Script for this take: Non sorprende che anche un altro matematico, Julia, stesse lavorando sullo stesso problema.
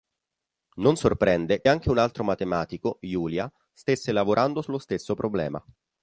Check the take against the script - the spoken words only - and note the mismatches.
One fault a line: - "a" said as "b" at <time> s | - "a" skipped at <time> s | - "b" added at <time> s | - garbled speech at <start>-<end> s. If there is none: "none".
- "che" skipped at 1.6 s